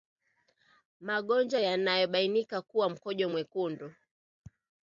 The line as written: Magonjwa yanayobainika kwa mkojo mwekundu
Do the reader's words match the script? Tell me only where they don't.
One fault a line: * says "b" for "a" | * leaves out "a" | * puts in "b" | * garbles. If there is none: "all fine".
all fine